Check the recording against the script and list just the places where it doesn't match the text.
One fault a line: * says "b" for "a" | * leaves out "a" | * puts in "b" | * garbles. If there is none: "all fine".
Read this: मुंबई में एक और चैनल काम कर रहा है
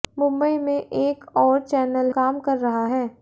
all fine